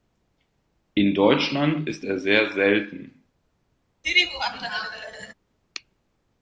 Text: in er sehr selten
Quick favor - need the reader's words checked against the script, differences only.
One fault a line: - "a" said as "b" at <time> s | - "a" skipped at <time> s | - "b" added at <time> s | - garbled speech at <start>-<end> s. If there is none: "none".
- "deutschland ist" added at 1.1 s